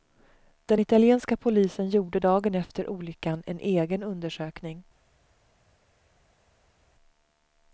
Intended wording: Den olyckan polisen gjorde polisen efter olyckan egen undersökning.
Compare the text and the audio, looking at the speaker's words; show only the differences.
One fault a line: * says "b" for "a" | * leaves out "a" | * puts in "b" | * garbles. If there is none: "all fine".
* says "italienska" for "olyckan"
* says "dagen" for "polisen"
* puts in "en"